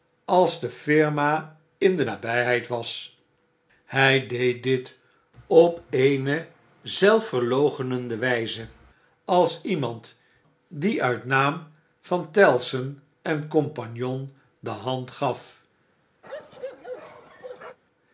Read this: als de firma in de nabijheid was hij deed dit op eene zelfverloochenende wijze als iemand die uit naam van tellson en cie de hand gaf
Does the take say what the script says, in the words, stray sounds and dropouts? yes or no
no